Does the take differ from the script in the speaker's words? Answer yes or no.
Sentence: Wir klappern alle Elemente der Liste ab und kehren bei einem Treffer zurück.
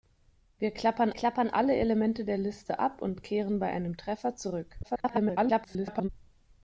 yes